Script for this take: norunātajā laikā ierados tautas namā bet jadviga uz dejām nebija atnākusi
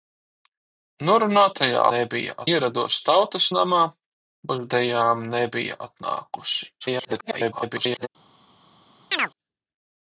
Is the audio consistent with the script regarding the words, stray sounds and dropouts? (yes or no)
no